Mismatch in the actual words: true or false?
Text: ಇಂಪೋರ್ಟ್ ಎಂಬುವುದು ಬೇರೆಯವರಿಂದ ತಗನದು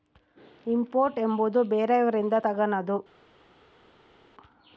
false